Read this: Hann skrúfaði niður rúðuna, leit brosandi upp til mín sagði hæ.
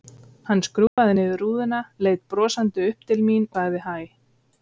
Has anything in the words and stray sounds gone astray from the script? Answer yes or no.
yes